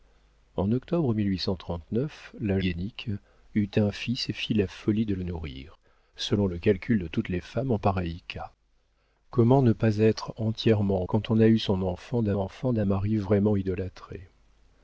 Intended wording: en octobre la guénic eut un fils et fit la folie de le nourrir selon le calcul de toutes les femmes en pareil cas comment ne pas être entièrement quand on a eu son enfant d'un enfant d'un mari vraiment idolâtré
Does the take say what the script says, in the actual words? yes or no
yes